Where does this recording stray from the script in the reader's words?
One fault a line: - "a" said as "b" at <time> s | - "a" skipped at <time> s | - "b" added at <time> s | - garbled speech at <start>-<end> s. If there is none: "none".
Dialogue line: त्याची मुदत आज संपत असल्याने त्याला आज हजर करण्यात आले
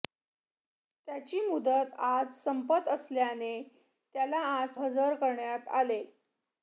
none